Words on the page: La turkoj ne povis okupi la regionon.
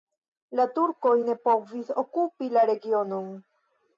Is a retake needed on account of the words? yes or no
no